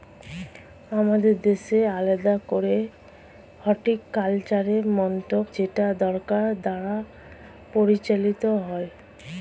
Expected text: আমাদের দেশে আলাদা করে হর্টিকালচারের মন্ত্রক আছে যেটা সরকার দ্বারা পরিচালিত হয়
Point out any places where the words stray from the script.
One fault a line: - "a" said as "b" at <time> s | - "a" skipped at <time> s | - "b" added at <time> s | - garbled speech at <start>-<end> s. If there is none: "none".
- "আছে" skipped at 5.5 s